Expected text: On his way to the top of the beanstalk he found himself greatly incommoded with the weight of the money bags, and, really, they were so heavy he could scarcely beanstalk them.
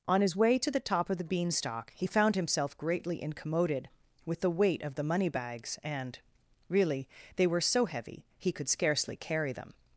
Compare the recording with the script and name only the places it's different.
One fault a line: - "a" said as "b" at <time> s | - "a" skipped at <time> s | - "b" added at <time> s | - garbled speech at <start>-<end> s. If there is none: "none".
- "beanstalk" said as "carry" at 9.2 s